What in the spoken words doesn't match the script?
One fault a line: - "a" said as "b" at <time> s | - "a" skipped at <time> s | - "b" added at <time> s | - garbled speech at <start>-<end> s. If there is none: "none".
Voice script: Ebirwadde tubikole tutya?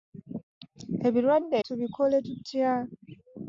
none